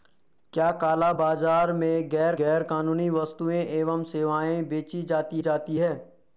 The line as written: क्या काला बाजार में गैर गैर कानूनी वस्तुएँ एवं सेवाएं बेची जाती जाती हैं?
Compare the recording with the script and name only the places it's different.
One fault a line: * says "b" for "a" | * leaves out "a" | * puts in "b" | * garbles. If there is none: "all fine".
all fine